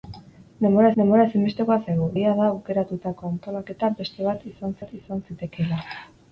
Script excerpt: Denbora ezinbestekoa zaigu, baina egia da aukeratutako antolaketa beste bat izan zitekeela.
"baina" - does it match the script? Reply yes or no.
no